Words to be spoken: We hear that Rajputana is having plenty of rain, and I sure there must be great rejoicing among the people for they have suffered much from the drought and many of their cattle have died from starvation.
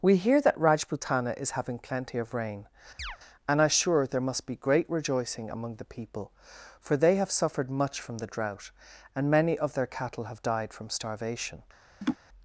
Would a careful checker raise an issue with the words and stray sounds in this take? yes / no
yes